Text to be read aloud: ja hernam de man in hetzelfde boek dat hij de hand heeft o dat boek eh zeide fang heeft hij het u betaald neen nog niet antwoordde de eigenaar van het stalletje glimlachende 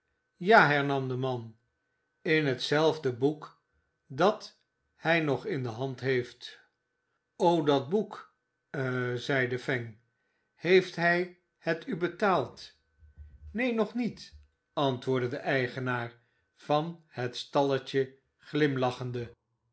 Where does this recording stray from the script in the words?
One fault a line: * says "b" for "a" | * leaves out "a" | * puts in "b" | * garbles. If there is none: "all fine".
* puts in "nog in"